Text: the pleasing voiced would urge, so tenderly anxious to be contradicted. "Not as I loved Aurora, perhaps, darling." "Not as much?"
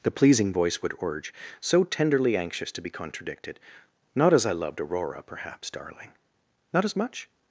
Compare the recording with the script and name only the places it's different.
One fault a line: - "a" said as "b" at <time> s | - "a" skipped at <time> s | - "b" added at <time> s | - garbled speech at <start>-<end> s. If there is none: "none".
- "voiced" said as "voice" at 0.5 s